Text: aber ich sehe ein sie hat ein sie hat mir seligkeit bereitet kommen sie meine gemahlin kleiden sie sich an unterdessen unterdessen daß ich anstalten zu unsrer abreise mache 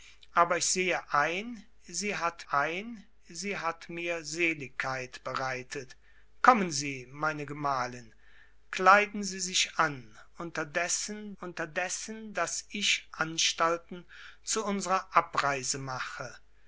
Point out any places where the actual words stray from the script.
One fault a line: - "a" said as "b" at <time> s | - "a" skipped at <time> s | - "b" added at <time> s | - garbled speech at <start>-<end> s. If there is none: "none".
none